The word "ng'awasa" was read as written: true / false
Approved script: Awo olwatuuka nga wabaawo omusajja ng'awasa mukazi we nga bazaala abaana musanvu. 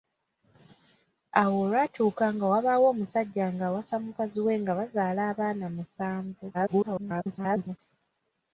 true